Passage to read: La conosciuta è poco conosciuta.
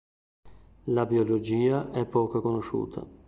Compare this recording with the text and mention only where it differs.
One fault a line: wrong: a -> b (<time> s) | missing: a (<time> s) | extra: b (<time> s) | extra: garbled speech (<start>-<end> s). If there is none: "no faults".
wrong: conosciuta -> biologia (1.1 s)